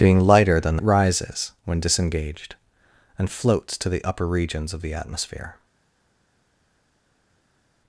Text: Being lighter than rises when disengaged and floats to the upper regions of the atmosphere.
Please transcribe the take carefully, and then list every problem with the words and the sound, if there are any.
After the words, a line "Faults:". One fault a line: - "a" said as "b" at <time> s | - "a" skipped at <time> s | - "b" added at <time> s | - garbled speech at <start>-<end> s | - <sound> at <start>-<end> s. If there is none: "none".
Being lighter than rises when disengaged and floats to the upper regions of the atmosphere.
Faults:
none